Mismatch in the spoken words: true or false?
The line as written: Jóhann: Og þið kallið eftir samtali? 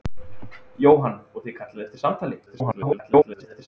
true